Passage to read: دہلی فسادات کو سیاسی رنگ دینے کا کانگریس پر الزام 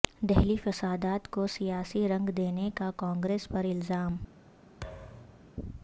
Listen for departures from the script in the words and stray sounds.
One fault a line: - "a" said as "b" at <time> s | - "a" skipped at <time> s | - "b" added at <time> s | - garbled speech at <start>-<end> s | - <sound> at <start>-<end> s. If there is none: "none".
- thud at 4.8-5.5 s